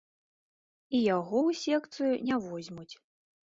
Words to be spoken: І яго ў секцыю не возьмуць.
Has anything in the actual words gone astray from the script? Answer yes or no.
no